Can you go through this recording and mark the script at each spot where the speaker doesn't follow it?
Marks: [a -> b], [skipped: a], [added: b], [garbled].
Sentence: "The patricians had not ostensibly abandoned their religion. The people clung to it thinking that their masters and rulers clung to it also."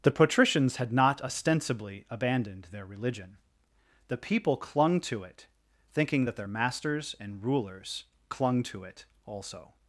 "The patricians had not ostensibly abandoned their religion. The people clung to it thinking that their masters and rulers clung to it also."